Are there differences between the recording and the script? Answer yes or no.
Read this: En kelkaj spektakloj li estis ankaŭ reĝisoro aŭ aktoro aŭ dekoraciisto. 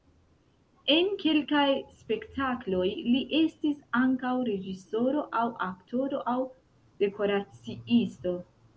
no